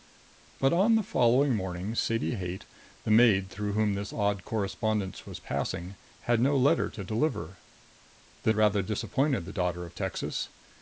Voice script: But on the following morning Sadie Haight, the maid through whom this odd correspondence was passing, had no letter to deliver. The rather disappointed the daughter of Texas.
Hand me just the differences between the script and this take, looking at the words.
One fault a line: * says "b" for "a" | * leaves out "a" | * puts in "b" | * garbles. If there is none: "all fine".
all fine